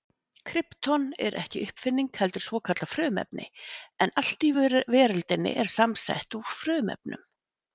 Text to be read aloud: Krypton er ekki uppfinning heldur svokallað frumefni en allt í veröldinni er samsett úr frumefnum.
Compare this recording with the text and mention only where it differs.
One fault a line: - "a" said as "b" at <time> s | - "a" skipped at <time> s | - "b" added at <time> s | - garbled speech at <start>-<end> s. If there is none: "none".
none